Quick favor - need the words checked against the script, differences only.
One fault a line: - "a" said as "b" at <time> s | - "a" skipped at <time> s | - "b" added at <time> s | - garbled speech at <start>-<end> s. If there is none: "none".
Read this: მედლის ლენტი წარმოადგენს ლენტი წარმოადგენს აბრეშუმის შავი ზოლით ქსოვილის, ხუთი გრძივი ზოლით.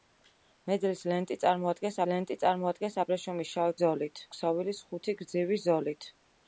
none